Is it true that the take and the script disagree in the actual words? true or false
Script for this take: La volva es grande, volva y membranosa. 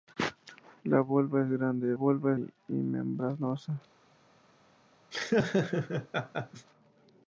false